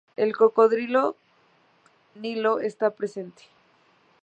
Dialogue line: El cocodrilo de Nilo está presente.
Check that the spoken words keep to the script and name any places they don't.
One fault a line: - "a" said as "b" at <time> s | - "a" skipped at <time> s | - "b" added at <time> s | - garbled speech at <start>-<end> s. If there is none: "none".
- "de" skipped at 1.1 s